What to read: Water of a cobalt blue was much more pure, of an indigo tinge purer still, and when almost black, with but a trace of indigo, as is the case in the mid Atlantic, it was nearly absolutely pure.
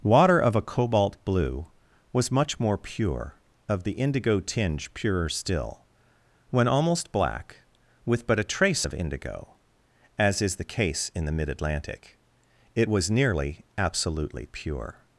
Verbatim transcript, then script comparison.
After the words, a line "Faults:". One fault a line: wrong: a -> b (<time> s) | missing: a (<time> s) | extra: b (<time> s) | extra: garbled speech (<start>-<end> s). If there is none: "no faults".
Water of a cobalt blue was much more pure, of the indigo tinge purer still, when almost black, with but a trace of indigo, as is the case in the mid Atlantic, it was nearly absolutely pure.
Faults:
wrong: an -> the (3.8 s)
missing: and (5.8 s)